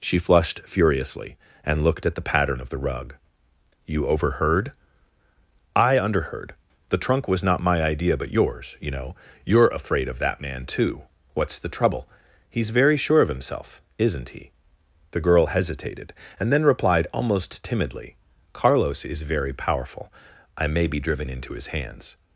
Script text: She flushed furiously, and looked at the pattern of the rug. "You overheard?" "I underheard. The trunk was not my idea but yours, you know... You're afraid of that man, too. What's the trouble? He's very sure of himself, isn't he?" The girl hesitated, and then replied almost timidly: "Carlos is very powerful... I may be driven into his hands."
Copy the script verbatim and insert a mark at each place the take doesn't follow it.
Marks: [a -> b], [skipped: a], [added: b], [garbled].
She flushed furiously, and looked at the pattern of the rug. "You overheard?" "I underheard. The trunk was not my idea but yours, you know... You're afraid of that man, too. What's the trouble? He's very sure of himself, isn't he?" The girl hesitated, and then replied almost timidly: "Carlos is very powerful... I may be driven into his hands."